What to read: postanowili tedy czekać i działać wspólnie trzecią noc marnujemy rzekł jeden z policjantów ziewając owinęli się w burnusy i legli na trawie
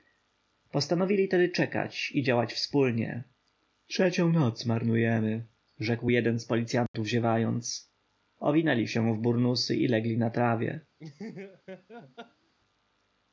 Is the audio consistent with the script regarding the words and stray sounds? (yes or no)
no